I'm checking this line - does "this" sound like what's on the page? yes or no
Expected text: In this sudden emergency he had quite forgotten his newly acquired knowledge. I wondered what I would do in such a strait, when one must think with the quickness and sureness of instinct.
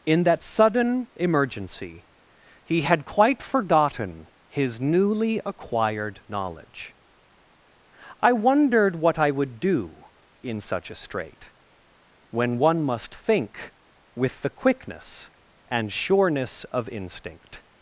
no